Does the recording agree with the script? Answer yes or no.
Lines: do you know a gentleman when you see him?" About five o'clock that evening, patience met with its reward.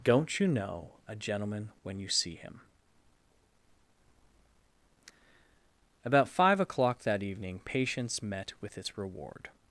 no